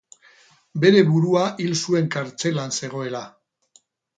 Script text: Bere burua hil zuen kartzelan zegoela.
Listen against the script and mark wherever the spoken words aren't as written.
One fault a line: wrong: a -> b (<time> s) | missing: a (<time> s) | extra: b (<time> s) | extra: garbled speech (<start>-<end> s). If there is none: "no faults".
no faults